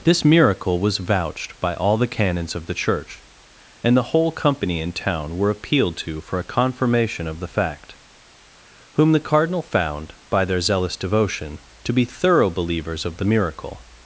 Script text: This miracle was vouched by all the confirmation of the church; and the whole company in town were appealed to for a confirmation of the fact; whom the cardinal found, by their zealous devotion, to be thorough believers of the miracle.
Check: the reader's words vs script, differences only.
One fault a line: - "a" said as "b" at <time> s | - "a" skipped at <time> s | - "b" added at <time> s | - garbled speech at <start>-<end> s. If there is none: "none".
- "confirmation" said as "canons" at 2.1 s